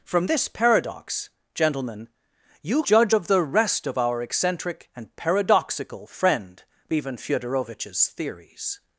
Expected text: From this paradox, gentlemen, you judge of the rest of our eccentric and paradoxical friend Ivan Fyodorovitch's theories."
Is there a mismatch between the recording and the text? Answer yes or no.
no